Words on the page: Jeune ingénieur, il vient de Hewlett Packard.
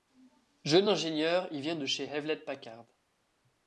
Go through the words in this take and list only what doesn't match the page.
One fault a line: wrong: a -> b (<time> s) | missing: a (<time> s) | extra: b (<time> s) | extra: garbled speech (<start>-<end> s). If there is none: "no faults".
extra: chez (1.8 s)